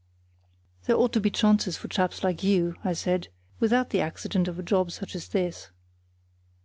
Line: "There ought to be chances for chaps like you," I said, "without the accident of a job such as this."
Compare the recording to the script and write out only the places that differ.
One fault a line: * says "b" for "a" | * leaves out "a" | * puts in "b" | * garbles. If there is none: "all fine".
all fine